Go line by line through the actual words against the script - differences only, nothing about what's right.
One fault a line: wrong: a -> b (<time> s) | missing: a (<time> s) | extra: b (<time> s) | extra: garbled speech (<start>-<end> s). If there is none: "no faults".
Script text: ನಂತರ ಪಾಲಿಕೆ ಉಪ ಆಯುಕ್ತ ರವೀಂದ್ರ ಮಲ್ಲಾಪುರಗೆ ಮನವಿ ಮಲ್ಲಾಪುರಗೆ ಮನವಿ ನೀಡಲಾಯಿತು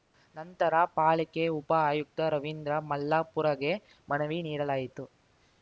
missing: ಮಲ್ಲಾಪುರಗೆ ಮನವಿ (4.4 s)